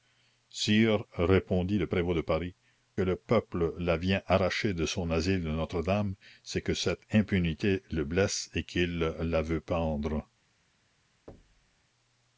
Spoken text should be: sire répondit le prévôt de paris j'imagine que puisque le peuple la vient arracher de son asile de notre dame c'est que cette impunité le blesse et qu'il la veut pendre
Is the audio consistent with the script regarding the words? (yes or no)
no